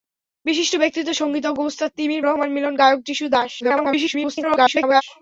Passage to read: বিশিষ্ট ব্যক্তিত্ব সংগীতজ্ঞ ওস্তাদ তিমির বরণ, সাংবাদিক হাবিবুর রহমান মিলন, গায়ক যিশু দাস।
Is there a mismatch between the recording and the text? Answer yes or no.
yes